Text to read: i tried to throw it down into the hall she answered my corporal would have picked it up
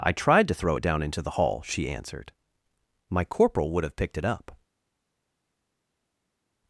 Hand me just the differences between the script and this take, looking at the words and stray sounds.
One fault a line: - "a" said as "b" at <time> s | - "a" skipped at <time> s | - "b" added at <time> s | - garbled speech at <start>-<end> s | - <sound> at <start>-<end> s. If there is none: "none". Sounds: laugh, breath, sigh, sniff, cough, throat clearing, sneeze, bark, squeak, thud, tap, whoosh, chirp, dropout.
none